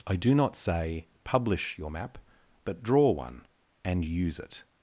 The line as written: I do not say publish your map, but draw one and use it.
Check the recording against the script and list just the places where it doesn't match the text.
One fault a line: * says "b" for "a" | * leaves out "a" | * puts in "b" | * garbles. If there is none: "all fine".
all fine